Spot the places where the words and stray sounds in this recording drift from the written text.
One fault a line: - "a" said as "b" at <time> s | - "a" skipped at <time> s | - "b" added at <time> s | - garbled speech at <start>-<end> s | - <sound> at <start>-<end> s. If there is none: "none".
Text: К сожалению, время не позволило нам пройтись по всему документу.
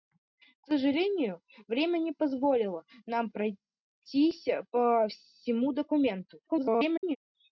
- garbled speech at 6.5-7.2 s